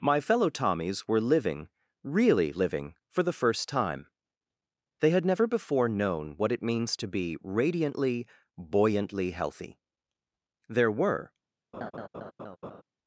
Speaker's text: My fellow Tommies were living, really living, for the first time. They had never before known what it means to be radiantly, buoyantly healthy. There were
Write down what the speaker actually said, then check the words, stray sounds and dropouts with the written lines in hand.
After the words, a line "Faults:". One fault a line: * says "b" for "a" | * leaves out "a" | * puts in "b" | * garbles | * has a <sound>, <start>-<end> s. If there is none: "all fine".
My fellow Tommies were living, really living, for the first time. They had never before known what it means to be radiantly, buoyantly healthy. There were
Faults:
* has a laugh, 11.7-12.8 s